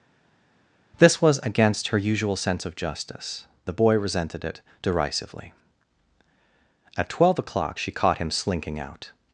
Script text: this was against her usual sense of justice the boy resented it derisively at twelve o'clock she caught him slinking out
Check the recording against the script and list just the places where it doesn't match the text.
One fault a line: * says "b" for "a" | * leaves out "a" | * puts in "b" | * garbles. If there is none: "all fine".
all fine